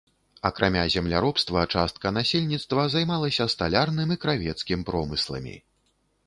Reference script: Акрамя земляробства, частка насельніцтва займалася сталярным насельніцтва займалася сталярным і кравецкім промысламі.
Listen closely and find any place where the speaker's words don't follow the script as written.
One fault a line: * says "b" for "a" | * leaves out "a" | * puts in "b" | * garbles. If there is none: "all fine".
* leaves out "насельніцтва займалася сталярным"